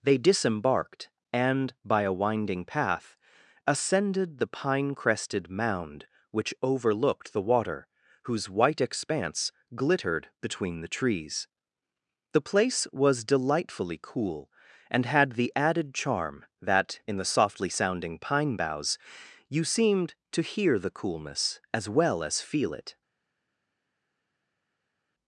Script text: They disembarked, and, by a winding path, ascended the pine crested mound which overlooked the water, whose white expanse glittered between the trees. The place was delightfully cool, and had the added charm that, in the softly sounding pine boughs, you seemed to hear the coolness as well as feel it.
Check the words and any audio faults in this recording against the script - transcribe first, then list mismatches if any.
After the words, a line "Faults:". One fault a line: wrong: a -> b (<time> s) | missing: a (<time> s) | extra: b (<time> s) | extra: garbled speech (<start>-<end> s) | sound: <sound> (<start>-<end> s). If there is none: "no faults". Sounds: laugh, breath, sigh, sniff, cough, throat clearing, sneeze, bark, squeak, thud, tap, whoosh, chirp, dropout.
They disembarked, and, by a winding path, ascended the pine crested mound which overlooked the water, whose white expanse glittered between the trees. The place was delightfully cool, and had the added charm that, in the softly sounding pine boughs, you seemed to hear the coolness as well as feel it.
Faults:
no faults